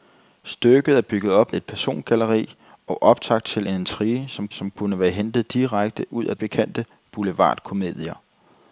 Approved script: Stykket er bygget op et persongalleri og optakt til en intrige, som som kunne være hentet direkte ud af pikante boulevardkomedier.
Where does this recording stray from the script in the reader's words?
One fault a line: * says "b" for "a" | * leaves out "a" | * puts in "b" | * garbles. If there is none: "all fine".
all fine